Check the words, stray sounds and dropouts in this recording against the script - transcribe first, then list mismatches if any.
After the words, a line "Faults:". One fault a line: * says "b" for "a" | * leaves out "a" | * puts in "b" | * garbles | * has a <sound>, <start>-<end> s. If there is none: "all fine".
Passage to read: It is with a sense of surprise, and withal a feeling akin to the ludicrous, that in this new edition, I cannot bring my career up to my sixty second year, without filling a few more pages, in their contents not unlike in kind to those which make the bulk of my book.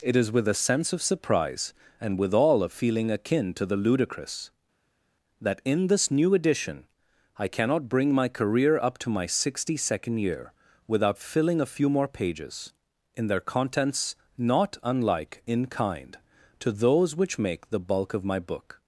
It is with a sense of surprise, and withal a feeling akin to the ludicrous, that in this new edition, I cannot bring my career up to my sixty second year, without filling a few more pages, in their contents not unlike in kind to those which make the bulk of my book.
Faults:
all fine